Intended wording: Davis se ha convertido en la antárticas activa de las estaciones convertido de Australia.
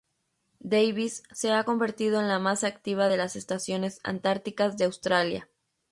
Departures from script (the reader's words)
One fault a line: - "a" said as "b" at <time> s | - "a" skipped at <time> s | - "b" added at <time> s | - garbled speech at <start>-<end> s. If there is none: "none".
- "antárticas" said as "más" at 2.4 s
- "convertido" said as "antárticas" at 4.0 s